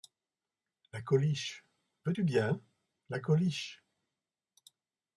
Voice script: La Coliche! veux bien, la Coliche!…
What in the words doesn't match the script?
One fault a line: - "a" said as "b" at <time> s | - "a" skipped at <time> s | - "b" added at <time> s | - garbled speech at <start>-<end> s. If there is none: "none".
- "tu" added at 2.1 s